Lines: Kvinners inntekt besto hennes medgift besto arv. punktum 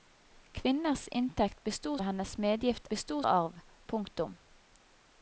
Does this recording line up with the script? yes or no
yes